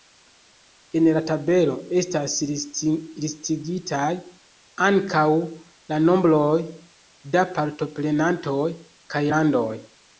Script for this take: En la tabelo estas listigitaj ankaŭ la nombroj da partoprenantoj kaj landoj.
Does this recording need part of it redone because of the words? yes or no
no